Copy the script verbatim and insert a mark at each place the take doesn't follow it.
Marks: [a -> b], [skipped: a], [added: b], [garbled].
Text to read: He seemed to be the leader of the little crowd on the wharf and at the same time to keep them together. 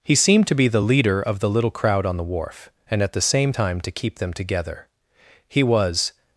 He seemed to be the leader of the little crowd on the wharf and at the same time to keep them together. [added: He was]